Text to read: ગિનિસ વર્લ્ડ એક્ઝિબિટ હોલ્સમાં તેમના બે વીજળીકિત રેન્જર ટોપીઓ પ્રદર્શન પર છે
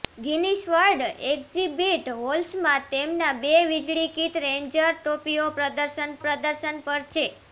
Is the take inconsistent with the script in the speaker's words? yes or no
yes